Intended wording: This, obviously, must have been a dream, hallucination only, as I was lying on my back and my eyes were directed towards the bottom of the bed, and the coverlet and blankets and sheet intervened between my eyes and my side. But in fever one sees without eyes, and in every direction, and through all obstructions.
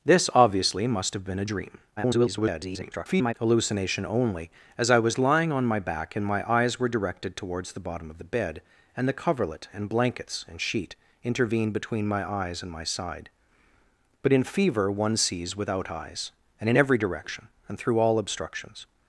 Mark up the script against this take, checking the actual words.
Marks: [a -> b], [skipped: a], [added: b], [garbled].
This, obviously, must have been a dream, [garbled] hallucination only, as I was lying on my back and my eyes were directed towards the bottom of the bed, and the coverlet and blankets and sheet intervened between my eyes and my side. But in fever one sees without eyes, and in every direction, and through all obstructions.